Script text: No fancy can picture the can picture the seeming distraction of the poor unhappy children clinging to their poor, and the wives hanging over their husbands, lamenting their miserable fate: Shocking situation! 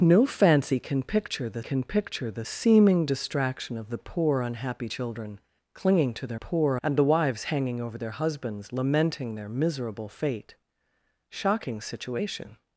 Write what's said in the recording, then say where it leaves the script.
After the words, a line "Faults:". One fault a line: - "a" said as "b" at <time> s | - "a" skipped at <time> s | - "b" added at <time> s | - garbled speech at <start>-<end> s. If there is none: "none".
No fancy can picture the can picture the seeming distraction of the poor unhappy children clinging to their poor, and the wives hanging over their husbands, lamenting their miserable fate: Shocking situation!
Faults:
none